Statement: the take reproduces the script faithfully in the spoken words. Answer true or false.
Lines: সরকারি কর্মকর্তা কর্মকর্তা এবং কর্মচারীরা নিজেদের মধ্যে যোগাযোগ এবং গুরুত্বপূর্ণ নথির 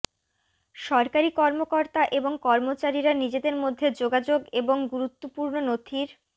false